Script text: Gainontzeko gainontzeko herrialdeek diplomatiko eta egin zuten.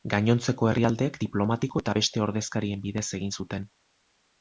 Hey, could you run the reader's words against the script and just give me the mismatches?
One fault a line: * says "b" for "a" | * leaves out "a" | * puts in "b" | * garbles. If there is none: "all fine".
* leaves out "gainontzeko"
* puts in "beste ordezkarien bidez"